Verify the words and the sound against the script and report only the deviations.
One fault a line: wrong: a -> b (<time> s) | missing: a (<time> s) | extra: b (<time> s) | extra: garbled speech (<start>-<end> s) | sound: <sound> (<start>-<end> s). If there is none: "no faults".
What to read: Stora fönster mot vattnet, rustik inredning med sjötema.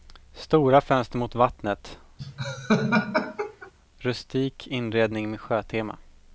sound: laugh (2.2-3.7 s)